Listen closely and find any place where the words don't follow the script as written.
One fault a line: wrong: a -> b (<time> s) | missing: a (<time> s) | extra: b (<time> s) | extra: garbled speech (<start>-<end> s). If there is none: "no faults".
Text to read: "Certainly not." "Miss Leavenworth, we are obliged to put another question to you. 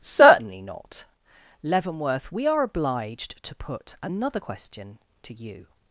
missing: Miss (1.1 s)